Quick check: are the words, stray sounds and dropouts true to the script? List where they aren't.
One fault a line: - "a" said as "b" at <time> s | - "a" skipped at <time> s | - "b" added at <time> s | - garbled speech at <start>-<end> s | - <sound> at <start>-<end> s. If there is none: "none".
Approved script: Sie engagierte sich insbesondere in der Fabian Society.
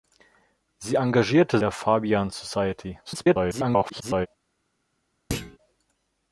- "sich insbesondere in" skipped at 1.6 s
- garbled speech at 3.0-4.3 s
- thud at 5.3-5.6 s